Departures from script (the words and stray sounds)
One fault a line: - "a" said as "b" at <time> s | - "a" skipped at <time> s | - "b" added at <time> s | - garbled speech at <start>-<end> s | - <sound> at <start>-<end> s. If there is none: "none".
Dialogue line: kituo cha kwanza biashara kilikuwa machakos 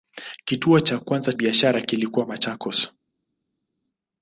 none